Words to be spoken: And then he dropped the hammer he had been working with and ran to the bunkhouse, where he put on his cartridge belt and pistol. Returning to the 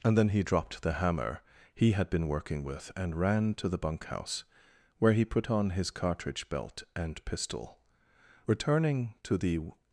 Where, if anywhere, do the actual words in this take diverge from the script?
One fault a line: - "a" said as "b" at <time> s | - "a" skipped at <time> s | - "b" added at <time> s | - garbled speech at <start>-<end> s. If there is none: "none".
none